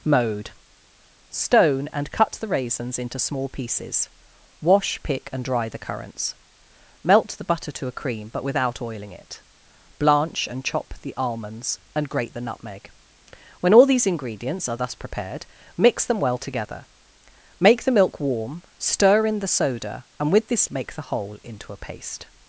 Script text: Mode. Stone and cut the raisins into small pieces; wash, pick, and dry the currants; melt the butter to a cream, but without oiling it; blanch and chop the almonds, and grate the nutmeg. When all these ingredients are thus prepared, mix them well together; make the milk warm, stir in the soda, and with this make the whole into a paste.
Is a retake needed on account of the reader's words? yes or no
no